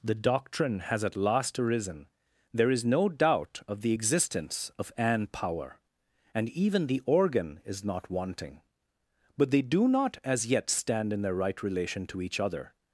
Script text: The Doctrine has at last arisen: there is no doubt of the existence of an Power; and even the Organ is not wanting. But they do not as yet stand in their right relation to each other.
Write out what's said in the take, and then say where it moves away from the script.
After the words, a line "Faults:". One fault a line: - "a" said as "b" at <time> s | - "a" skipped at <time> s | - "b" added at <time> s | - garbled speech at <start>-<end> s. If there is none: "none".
The Doctrine has at last arisen: there is no doubt of the existence of an Power; and even the Organ is not wanting. But they do not as yet stand in their right relation to each other.
Faults:
none